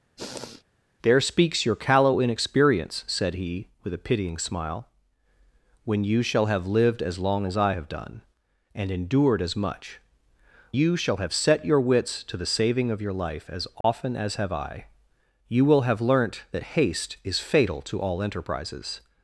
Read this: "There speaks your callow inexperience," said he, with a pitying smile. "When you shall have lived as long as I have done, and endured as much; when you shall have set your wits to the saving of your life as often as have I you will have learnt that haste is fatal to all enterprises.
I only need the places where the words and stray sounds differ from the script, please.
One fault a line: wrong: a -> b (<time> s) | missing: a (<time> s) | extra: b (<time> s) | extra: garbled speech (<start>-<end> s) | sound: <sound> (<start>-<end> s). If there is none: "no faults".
sound: sniff (0.2-0.6 s)
missing: when (10.0 s)
sound: dropout (13.8-13.8 s)